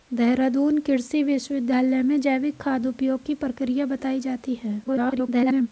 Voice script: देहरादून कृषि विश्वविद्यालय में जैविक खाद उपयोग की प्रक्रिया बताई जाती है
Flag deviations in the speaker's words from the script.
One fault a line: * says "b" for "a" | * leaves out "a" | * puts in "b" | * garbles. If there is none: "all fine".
* garbles